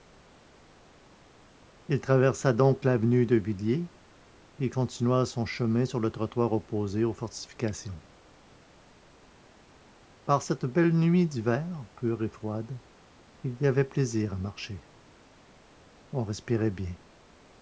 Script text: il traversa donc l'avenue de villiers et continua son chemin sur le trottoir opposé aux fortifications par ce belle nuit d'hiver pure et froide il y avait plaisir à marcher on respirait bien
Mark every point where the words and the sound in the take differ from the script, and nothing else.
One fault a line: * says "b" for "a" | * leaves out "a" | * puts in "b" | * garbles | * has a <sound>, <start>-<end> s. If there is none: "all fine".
* says "cette" for "ce"